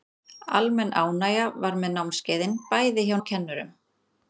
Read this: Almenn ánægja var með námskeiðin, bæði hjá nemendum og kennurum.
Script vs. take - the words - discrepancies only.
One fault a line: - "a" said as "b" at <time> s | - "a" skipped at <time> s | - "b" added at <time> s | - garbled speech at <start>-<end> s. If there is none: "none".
- "nemendum" skipped at 3.2 s